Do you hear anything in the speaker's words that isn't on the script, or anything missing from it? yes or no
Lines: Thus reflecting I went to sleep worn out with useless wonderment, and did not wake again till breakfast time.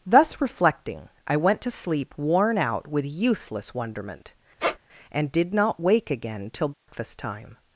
no